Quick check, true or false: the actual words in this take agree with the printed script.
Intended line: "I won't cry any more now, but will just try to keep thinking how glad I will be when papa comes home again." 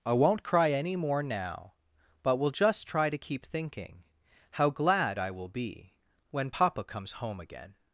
true